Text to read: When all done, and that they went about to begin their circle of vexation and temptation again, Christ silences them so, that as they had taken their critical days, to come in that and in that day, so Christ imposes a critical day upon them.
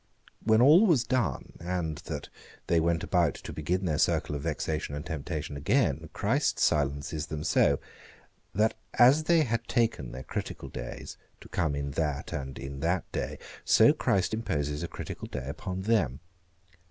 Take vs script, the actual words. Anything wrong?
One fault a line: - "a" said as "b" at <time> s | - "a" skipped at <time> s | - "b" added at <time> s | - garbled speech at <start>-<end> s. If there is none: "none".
- "was" added at 0.9 s